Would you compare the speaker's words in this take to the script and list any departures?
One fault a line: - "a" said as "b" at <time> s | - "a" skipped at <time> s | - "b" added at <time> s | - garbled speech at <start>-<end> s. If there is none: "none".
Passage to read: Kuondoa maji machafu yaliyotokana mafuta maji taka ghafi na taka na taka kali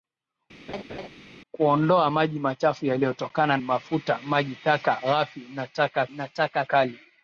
none